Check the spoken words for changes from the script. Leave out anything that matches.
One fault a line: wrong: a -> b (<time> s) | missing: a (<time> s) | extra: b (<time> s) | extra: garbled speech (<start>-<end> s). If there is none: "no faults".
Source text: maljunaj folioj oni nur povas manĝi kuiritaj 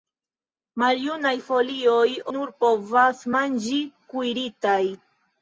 missing: oni (2.1 s)